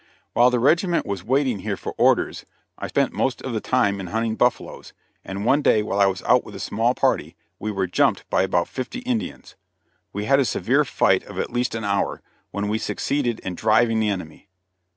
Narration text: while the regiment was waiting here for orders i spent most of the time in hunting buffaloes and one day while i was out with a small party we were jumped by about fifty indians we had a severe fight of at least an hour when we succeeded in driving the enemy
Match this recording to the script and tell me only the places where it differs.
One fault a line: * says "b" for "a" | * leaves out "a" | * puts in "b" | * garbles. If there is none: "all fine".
all fine